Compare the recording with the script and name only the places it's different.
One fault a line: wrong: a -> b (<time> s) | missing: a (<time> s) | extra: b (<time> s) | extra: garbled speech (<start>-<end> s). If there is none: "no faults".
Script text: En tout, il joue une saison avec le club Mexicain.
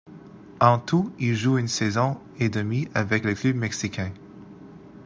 extra: et demie (2.4 s)